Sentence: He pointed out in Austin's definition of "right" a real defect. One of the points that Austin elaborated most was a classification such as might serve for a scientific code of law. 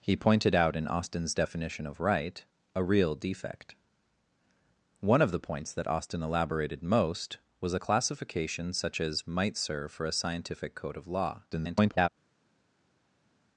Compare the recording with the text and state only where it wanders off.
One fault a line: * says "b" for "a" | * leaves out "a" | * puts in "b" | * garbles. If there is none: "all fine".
* garbles